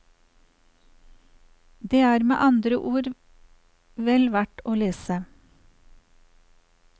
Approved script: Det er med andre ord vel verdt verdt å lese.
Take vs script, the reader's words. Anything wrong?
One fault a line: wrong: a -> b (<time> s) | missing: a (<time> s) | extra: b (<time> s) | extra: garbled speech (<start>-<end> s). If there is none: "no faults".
missing: verdt (4.6 s)